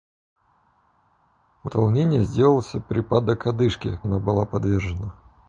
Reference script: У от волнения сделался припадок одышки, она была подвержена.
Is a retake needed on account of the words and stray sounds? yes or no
no